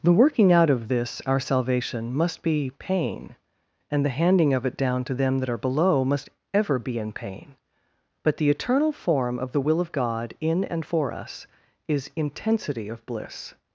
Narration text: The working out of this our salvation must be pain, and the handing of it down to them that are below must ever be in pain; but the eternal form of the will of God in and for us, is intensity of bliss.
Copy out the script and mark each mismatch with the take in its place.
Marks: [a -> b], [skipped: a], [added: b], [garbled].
The working out of this our salvation must be pain, and the handing of it down to them that are below must ever be in pain; but the eternal form of the will of God in and for us, is intensity of bliss.